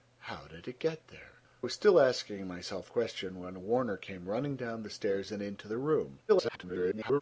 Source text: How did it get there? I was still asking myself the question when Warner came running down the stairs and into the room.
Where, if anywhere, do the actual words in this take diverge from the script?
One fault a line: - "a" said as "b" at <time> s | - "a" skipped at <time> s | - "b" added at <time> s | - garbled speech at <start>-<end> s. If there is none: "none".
- "I" skipped at 1.3 s
- "the" skipped at 2.9 s
- garbled speech at 6.3-7.2 s